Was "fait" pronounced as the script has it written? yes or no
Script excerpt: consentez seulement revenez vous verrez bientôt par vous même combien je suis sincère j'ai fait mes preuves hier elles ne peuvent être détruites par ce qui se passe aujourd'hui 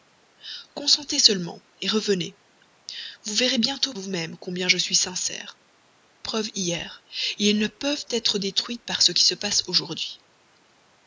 no